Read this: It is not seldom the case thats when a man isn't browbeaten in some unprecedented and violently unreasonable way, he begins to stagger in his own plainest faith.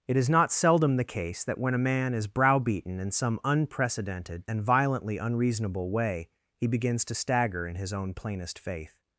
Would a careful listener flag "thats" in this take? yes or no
yes